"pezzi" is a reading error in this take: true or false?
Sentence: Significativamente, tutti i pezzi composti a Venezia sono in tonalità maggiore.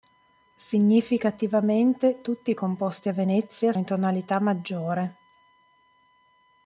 true